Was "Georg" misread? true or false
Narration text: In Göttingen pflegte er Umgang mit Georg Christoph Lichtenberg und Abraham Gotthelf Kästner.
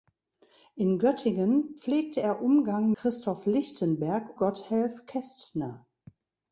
true